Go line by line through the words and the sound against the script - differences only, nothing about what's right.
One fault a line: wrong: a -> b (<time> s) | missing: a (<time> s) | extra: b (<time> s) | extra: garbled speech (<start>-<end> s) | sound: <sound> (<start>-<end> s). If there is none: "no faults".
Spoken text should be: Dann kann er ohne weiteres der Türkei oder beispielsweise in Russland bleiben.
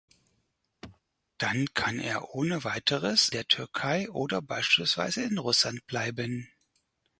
sound: throat clearing (0.8-1.0 s)